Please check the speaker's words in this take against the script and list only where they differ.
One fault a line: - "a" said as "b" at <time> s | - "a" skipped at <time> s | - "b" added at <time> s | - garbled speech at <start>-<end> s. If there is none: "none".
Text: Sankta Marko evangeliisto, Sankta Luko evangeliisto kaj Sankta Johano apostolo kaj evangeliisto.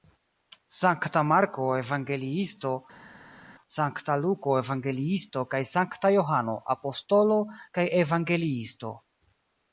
none